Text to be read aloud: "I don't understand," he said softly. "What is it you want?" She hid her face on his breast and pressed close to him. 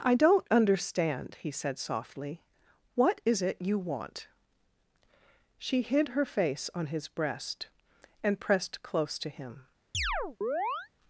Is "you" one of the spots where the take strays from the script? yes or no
no